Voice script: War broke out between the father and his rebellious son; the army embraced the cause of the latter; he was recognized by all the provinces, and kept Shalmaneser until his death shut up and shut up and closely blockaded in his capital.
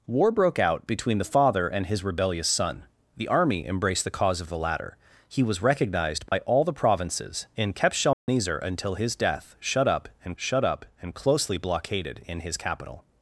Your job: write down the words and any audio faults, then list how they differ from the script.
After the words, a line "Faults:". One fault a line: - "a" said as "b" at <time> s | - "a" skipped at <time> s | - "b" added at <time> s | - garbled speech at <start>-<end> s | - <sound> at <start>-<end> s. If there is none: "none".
War broke out between the father and his rebellious son; the army embraced the cause of the latter; he was recognized by all the provinces, and kept Shalmaneser until his death shut up and shut up and closely blockaded in his capital.
Faults:
- dropout at 6.3-6.3 s
- dropout at 8.1-8.3 s